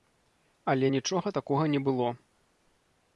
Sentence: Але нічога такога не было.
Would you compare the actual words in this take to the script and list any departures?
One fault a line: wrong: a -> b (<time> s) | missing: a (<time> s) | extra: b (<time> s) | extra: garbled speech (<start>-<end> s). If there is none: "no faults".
no faults